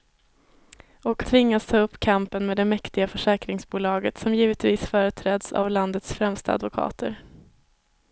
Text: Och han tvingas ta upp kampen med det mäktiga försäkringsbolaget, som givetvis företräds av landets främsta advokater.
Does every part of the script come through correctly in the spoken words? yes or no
no